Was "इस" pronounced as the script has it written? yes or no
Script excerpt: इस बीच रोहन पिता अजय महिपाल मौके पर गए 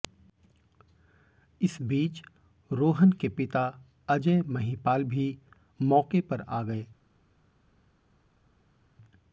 yes